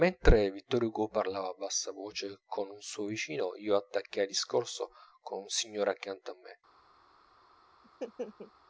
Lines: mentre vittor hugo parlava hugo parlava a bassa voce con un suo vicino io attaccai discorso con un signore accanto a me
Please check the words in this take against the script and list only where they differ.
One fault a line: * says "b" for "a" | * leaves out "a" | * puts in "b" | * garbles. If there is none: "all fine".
* leaves out "hugo parlava"